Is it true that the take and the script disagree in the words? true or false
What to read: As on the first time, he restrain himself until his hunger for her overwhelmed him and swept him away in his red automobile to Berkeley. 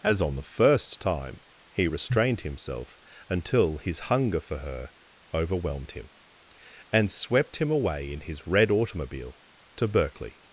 true